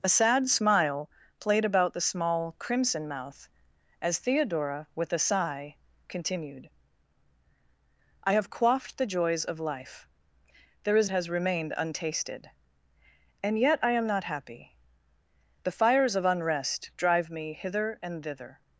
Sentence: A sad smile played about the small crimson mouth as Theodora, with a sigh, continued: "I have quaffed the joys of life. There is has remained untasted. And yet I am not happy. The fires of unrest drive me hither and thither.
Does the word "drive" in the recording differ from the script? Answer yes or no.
no